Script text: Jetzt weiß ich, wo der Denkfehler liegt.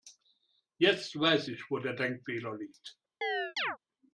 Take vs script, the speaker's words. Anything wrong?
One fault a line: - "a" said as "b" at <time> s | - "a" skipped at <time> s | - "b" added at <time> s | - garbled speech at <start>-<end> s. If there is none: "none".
none